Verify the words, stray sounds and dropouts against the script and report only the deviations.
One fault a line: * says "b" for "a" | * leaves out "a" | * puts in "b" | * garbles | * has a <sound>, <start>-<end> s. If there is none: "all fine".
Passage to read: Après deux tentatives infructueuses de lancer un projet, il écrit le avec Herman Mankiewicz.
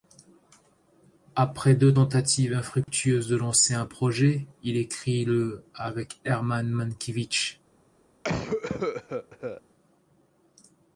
* has a dropout, 2.8-2.9 s
* has a cough, 8.2-9.6 s